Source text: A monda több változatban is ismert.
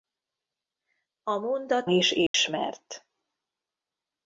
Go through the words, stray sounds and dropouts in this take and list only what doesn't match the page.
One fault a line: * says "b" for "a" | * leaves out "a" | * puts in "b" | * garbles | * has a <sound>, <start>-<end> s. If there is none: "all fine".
* leaves out "több változatban"
* has a dropout, 2.3-2.3 s